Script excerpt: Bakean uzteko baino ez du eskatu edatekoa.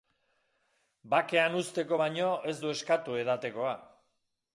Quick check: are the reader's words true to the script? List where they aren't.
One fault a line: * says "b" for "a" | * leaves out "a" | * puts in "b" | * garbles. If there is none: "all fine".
all fine